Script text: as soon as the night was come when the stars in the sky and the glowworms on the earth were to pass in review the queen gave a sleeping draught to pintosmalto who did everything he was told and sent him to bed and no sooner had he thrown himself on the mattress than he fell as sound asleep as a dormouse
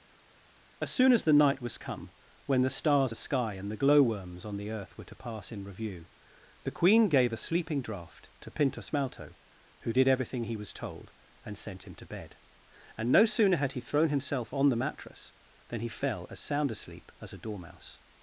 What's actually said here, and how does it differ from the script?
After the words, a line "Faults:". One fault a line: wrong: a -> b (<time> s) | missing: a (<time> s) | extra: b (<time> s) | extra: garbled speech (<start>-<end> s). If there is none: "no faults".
as soon as the night was come when the stars the sky and the glowworms on the earth were to pass in review the queen gave a sleeping draught to pintosmalto who did everything he was told and sent him to bed and no sooner had he thrown himself on the mattress than he fell as sound asleep as a dormouse
Faults:
missing: in (3.1 s)